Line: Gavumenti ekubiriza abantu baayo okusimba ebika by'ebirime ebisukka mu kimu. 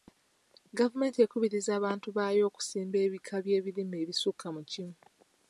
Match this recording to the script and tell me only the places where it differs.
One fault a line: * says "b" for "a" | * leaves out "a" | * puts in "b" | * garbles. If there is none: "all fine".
all fine